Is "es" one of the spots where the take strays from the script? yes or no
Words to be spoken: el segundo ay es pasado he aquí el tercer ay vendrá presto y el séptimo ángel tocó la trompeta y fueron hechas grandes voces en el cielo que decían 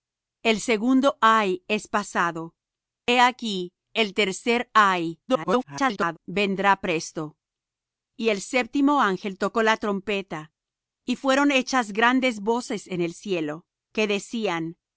no